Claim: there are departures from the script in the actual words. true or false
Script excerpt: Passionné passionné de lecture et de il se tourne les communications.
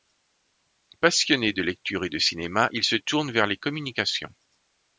true